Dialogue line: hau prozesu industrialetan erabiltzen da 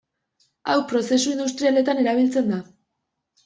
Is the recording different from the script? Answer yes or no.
no